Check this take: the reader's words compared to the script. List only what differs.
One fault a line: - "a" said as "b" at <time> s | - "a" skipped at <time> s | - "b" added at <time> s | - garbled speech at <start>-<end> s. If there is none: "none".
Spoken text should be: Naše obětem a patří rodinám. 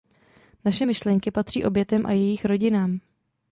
- "myšlenky patří" added at 0.8 s
- "patří" said as "jejich" at 2.1 s